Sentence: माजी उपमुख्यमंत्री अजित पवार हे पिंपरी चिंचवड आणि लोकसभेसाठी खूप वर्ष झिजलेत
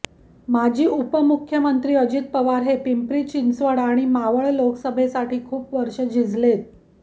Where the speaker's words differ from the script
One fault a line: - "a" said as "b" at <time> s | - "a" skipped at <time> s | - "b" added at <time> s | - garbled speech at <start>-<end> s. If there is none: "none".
- "मावळ" added at 4.1 s